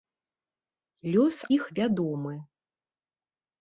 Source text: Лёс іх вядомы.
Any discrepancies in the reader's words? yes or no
no